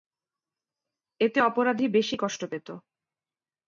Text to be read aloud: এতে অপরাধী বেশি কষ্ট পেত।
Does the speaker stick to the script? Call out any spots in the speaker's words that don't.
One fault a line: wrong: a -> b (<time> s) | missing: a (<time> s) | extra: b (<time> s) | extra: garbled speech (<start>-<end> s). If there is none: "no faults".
no faults